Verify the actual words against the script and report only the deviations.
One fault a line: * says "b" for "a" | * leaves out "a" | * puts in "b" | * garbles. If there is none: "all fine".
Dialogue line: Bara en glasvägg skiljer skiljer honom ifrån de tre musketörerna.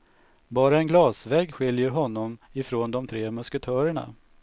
* leaves out "skiljer"